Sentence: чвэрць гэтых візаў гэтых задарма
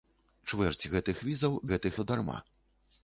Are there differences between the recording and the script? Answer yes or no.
no